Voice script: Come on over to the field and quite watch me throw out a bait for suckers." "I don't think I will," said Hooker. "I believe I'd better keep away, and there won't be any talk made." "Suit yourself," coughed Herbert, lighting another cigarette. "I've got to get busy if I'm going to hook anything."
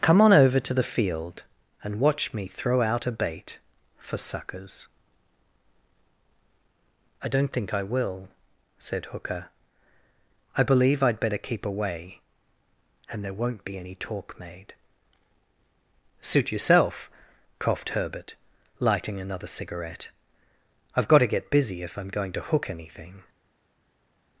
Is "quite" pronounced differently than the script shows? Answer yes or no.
yes